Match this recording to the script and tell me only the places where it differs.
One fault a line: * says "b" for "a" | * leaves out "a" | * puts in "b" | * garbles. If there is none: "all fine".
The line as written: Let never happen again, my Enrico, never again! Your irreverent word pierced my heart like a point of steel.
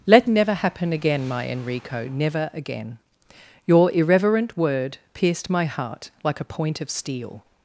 all fine